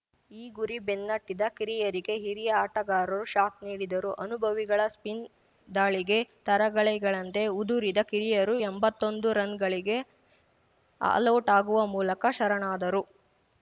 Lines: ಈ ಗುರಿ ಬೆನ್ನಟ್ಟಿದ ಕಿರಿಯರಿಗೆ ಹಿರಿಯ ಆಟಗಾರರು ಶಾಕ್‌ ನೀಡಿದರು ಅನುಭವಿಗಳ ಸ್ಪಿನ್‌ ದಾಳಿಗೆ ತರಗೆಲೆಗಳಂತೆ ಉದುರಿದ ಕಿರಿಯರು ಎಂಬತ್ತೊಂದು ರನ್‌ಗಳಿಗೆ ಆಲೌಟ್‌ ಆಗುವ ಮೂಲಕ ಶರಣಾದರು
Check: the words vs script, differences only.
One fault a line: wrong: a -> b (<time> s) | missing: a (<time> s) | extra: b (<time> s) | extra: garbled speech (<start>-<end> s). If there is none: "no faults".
no faults